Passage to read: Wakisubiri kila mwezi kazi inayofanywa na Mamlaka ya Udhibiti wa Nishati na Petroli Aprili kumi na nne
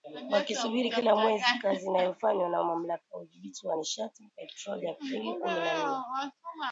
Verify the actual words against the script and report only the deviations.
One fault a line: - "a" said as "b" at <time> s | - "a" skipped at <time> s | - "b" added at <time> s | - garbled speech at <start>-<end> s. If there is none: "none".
none